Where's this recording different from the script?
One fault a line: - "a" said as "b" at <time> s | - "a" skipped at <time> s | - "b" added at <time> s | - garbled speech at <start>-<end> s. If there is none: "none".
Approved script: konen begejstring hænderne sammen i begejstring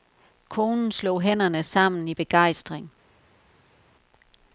- "begejstring" said as "slog" at 0.9 s